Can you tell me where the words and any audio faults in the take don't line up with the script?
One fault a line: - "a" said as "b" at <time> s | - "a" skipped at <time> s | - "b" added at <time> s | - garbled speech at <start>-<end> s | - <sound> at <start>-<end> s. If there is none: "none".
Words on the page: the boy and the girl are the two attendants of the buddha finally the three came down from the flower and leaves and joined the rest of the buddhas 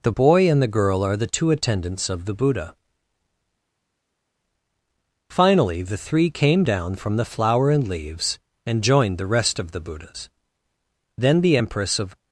- "then the empress of" added at 11.2 s